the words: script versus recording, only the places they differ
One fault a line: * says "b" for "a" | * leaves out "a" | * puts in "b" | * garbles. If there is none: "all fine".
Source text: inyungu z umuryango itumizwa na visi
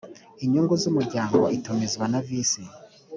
all fine